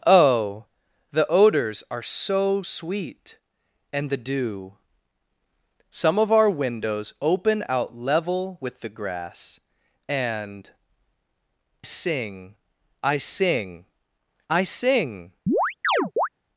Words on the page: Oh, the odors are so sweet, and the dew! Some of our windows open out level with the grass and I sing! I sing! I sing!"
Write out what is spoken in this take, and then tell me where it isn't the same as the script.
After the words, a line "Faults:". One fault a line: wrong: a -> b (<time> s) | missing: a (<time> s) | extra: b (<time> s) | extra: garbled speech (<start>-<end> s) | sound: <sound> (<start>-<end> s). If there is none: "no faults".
Oh, the odors are so sweet, and the dew! Some of our windows open out level with the grass and sing! I sing! I sing!"
Faults:
missing: I (10.7 s)
sound: chirp (15.5-16.3 s)